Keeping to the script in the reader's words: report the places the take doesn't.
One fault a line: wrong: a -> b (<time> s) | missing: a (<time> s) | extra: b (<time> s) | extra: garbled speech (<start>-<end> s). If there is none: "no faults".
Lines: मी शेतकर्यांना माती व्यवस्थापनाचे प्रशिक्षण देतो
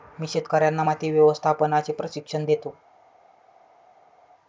no faults